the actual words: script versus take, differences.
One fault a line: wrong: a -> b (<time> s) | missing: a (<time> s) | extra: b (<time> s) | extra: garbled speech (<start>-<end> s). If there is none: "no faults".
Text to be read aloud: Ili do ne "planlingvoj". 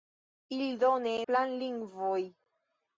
no faults